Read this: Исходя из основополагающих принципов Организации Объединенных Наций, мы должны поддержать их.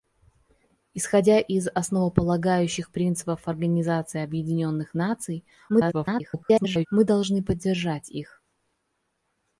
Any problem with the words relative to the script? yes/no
yes